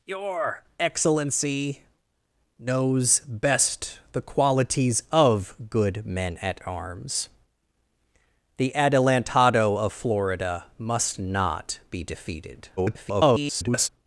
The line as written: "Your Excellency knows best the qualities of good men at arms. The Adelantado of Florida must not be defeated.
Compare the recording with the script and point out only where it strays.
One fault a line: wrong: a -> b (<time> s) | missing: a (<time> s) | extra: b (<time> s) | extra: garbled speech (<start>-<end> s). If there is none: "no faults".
extra: garbled speech (12.8-13.9 s)